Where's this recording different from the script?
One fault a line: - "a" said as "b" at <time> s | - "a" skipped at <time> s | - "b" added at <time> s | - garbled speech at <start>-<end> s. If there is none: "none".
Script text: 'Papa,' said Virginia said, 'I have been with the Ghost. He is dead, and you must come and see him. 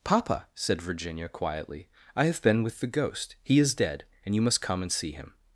- "said" said as "quietly" at 1.3 s